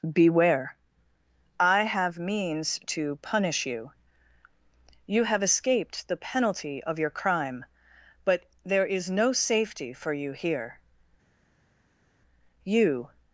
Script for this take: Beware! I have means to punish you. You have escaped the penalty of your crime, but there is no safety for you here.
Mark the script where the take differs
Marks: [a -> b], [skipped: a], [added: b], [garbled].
Beware! I have means to punish you. You have escaped the penalty of your crime, but there is no safety for you here. [added: You]